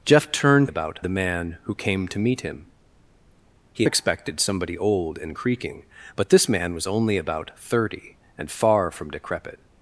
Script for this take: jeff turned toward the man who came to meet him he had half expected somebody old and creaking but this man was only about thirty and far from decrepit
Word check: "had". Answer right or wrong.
wrong